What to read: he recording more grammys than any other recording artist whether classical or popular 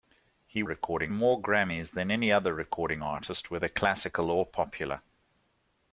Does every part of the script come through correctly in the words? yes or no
yes